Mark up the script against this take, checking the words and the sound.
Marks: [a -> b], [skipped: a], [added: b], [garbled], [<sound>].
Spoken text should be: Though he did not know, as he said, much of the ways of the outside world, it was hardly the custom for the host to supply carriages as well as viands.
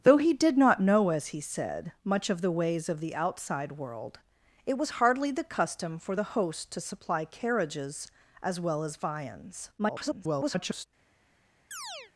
Though he did not know, as he said, much of the ways of the outside world, it was hardly the custom for the host to supply carriages as well as viands. [garbled] [chirp]